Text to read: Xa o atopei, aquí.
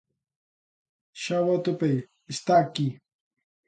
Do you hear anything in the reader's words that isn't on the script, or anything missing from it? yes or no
yes